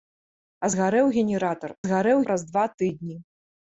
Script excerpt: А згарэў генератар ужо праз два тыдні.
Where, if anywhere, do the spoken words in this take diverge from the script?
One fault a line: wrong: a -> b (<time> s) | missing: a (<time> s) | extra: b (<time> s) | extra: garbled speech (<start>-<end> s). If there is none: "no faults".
wrong: ужо -> згарэў (1.9 s)